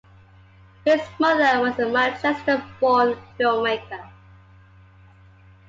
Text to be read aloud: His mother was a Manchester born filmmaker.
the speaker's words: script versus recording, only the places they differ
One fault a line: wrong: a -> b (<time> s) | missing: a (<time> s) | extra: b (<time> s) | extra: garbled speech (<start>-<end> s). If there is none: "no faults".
no faults